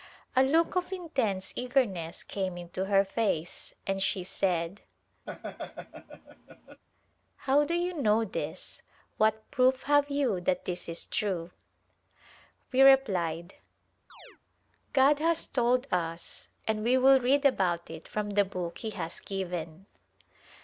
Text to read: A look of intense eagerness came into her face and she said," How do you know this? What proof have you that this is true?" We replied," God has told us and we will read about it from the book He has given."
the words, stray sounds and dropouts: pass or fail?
fail